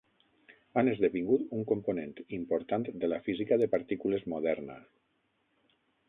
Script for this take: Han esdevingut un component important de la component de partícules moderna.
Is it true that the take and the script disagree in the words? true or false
true